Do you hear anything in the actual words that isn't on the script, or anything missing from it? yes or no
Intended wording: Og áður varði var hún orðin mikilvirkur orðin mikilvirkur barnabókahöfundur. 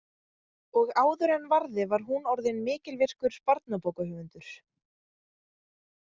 yes